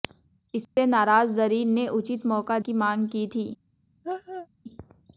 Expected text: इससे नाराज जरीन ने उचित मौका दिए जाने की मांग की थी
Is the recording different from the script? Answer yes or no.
yes